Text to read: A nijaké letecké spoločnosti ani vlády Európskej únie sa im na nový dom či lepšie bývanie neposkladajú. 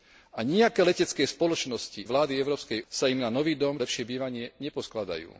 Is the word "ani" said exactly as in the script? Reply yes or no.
no